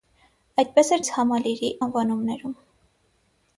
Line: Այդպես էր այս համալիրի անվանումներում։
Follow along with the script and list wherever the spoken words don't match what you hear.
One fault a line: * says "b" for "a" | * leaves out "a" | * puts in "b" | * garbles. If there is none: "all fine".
all fine